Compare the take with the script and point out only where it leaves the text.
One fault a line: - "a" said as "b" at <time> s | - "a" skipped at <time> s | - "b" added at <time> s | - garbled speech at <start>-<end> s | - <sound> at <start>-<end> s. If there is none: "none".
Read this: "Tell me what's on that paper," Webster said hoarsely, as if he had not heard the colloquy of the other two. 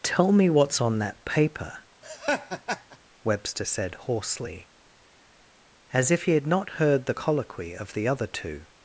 - laugh at 2.0-3.0 s